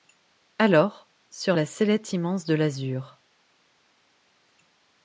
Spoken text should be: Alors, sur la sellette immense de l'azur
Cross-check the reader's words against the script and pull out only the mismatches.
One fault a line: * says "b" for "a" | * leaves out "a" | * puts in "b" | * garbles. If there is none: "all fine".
all fine